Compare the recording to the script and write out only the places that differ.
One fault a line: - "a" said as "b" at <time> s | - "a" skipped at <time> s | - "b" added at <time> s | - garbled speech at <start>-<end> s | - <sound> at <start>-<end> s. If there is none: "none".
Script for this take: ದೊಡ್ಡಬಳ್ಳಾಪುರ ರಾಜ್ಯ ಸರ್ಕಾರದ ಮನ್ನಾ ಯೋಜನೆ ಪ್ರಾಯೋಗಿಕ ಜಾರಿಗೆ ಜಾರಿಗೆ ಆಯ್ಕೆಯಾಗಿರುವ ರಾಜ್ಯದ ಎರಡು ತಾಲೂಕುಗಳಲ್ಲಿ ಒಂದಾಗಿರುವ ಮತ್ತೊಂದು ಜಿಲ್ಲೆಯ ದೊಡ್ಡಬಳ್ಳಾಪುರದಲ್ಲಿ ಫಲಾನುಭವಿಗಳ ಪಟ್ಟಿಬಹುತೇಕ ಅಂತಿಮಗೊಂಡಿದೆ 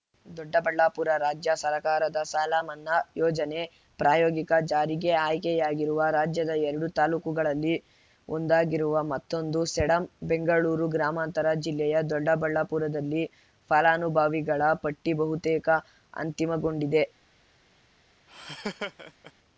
- "ಸಾಲ" added at 2.2 s
- "ಜಾರಿಗೆ" skipped at 5.1 s
- "ಸೇಡಂ ಬೆಂಗಳೂರು ಗ್ರಾಮಾಂತರ" added at 9.7 s
- laugh at 18.3-19.3 s